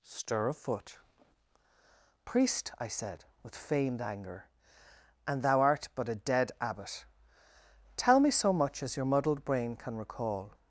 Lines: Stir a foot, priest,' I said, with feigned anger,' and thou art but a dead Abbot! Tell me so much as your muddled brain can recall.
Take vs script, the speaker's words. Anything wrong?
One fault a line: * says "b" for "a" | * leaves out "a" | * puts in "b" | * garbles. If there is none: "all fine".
all fine